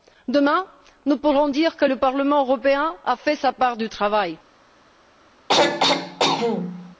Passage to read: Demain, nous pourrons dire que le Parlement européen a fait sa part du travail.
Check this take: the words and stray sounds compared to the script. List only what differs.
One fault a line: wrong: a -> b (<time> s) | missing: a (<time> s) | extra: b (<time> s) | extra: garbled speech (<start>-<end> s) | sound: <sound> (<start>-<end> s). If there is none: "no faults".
sound: throat clearing (5.5-7.0 s)